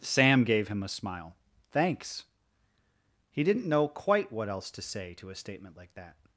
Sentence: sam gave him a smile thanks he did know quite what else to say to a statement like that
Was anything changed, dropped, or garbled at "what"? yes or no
no